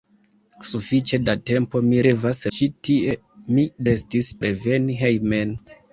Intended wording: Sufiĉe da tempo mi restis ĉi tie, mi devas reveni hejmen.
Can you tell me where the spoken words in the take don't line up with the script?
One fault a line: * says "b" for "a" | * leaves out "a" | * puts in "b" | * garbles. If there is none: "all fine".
* says "devas" for "restis"
* says "restis" for "devas"